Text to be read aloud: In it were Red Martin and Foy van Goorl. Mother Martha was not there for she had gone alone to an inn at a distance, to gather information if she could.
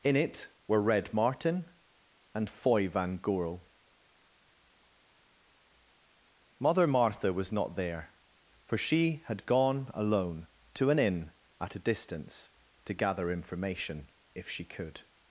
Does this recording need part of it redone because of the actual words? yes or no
no